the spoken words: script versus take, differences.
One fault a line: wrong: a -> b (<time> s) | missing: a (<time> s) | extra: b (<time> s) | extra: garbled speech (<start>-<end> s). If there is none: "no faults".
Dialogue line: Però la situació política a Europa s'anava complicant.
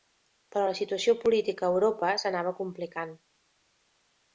no faults